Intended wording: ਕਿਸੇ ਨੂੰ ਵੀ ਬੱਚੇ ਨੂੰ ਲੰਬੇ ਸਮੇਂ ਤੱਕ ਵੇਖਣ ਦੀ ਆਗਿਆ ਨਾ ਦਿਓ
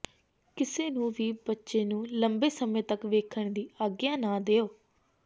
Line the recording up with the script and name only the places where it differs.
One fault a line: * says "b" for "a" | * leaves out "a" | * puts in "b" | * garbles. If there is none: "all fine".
all fine